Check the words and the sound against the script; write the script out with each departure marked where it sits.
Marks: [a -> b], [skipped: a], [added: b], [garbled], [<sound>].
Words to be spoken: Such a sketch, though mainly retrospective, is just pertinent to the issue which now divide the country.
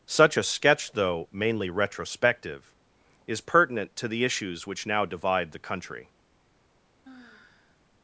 Such a sketch, though mainly retrospective, is [skipped: just] pertinent to the [issue -> issues] which now divide the country. [sigh]